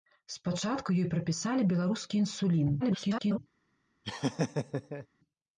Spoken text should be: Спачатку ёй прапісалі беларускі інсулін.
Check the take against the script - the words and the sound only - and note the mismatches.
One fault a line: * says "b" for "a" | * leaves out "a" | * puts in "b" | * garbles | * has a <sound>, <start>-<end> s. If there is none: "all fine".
* garbles
* has a laugh, 4.0-5.1 s